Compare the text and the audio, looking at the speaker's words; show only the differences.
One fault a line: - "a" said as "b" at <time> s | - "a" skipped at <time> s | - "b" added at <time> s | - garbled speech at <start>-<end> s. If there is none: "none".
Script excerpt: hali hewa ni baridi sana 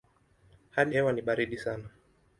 none